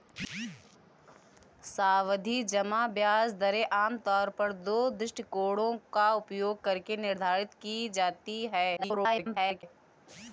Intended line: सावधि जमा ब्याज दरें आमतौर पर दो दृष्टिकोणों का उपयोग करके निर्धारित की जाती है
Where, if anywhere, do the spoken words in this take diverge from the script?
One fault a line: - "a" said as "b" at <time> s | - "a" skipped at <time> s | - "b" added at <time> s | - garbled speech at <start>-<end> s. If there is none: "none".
- garbled speech at 8.8-9.6 s